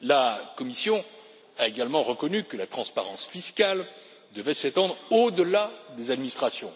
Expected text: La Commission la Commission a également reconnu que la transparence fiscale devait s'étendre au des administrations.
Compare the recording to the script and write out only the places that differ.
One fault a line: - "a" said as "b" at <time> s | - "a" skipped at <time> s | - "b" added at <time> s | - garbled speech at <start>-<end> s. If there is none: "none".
- "la Commission" skipped at 1.0 s
- "delà" added at 5.3 s